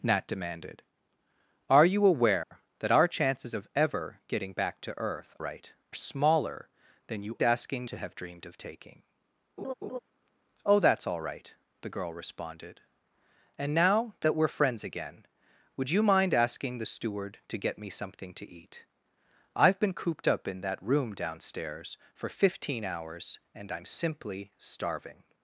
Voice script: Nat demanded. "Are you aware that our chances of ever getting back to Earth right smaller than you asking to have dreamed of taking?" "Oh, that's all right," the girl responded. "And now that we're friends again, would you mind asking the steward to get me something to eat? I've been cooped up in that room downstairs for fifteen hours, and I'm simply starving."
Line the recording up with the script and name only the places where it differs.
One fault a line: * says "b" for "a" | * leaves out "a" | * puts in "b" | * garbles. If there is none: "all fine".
all fine